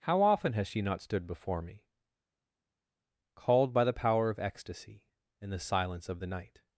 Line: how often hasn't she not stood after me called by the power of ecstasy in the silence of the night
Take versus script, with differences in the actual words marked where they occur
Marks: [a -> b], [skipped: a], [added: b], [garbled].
how often [hasn't -> has] she not stood [after -> before] me called by the power of ecstasy in the silence of the night